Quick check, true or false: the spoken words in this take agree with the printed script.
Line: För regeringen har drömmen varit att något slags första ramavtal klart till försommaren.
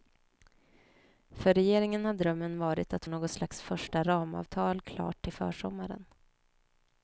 true